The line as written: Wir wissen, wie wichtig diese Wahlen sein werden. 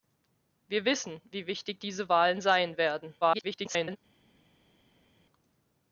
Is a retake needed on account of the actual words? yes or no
yes